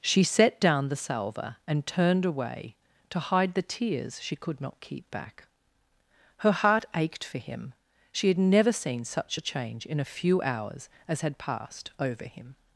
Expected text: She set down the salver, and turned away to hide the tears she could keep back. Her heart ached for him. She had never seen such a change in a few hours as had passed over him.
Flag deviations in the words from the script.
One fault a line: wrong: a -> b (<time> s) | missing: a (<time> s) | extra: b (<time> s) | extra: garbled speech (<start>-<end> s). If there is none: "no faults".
extra: not (4.6 s)